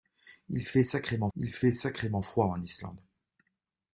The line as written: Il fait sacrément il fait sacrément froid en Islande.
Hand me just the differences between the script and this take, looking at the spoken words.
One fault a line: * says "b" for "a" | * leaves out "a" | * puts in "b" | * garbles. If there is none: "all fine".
all fine